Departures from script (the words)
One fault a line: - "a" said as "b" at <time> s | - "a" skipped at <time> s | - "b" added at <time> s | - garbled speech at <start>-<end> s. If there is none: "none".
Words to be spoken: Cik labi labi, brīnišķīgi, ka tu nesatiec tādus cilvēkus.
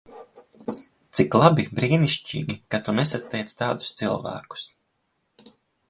- "labi" skipped at 1.6 s